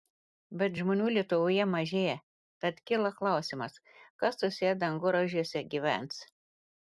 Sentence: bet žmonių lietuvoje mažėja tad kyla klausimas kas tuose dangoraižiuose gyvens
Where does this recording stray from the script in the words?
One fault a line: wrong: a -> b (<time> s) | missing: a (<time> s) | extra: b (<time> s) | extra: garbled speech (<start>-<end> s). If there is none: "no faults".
no faults